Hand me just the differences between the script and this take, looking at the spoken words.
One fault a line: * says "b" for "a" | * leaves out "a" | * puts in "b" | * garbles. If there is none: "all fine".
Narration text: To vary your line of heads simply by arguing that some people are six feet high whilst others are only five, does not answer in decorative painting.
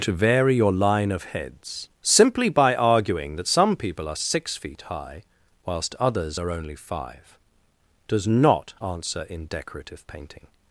all fine